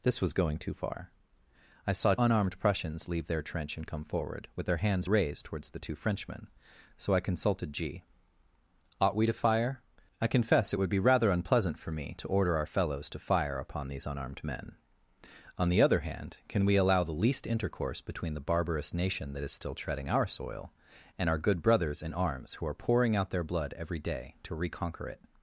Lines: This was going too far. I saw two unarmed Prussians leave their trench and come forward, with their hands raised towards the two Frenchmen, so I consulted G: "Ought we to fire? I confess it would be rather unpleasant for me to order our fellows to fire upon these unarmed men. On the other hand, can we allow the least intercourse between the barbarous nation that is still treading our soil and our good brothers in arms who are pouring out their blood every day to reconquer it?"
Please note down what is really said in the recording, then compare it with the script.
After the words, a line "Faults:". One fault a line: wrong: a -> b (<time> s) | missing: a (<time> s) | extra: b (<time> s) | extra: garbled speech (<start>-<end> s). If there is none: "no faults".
This was going too far. I saw unarmed Prussians leave their trench and come forward, with their hands raised towards the two Frenchmen, so I consulted G: "Ought we to fire? I confess it would be rather unpleasant for me to order our fellows to fire upon these unarmed men. On the other hand, can we allow the least intercourse between the barbarous nation that is still treading our soil and our good brothers in arms who are pouring out their blood every day to reconquer it?"
Faults:
missing: two (2.1 s)